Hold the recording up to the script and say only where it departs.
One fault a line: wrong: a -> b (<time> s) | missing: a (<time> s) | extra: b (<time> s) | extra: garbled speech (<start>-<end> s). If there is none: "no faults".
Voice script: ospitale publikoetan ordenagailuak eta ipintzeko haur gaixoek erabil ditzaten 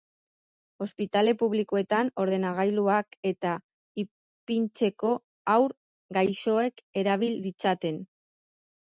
no faults